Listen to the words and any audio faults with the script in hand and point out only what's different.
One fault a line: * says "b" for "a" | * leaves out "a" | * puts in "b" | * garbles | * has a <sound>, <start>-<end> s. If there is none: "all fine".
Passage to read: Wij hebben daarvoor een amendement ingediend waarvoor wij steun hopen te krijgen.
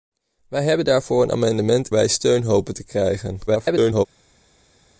* leaves out "ingediend waarvoor"
* garbles